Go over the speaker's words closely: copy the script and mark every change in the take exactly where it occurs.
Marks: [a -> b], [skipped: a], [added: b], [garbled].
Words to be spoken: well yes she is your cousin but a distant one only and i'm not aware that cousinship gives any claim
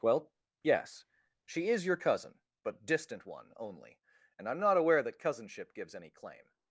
well yes she is your cousin but [skipped: a] distant one only and i'm not aware that cousinship gives any claim